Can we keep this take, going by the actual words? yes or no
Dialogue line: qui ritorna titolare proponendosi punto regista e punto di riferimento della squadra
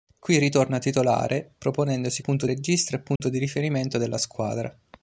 yes